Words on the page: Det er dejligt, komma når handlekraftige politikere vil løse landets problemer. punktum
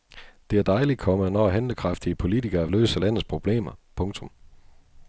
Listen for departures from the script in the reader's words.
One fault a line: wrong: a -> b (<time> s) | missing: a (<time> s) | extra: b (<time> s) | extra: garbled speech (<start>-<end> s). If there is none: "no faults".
missing: vil (2.7 s)